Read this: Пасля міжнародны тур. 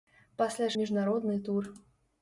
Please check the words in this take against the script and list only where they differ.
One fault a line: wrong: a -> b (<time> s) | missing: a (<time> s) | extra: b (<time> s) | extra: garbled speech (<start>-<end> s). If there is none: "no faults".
no faults